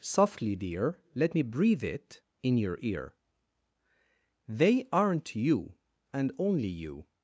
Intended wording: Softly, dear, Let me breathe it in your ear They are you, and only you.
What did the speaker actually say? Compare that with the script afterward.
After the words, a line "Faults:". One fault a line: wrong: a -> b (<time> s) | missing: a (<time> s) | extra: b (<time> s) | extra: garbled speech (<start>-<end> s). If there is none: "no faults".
Softly, dear, Let me breathe it in your ear They aren't you, and only you.
Faults:
wrong: are -> aren't (4.9 s)